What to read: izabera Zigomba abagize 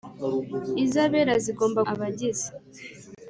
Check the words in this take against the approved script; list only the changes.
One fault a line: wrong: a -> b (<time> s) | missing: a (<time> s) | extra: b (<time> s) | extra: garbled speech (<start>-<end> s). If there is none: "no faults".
no faults